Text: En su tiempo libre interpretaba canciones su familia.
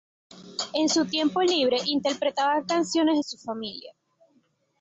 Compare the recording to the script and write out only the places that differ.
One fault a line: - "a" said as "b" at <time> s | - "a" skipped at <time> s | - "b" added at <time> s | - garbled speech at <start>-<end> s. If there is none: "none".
none